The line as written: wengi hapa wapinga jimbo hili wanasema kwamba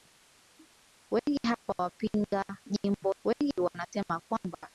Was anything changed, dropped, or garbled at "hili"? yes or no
yes